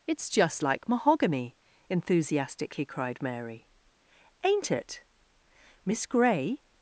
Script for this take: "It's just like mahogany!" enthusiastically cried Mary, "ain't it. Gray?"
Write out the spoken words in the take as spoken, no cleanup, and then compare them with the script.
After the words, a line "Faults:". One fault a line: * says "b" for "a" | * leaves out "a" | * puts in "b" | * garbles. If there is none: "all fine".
"It's just like mahogany!" enthusiastically cried Mary, "ain't it. Miss Gray?"
Faults:
* puts in "Miss"